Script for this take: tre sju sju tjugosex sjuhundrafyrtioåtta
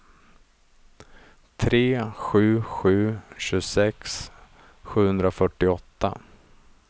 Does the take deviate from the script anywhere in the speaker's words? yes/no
no